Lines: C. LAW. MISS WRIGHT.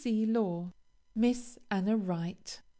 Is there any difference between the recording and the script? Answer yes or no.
yes